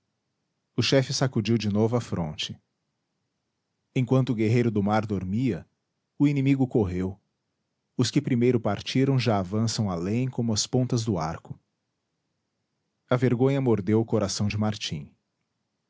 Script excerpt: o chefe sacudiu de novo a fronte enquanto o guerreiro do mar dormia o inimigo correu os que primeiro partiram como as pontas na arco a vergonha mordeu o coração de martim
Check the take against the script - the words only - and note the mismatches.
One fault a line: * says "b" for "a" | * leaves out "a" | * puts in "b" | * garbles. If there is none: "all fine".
* puts in "já avançam além"
* says "do" for "na"